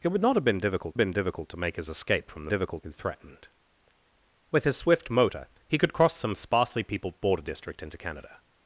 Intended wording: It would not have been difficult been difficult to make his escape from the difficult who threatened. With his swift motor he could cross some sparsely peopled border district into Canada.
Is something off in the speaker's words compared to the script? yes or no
no